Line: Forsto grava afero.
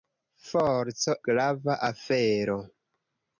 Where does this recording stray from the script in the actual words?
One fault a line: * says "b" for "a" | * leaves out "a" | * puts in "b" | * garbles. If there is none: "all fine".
all fine